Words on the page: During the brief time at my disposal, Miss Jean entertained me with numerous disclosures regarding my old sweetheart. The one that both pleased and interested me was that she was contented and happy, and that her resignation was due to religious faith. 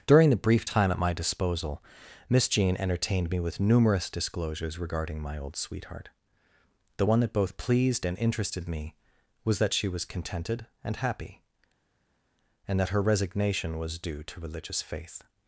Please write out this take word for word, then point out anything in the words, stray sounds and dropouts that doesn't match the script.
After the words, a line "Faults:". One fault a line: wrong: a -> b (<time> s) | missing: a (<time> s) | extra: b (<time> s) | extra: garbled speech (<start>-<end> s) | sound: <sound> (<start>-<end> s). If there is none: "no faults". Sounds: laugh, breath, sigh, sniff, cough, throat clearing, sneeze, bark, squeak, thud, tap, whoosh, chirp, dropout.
During the brief time at my disposal, Miss Jean entertained me with numerous disclosures regarding my old sweetheart. The one that both pleased and interested me was that she was contented and happy, and that her resignation was due to religious faith.
Faults:
no faults